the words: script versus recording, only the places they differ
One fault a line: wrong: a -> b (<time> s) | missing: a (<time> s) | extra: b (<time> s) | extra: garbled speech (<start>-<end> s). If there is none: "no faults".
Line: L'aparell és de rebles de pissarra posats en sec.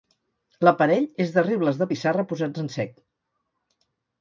no faults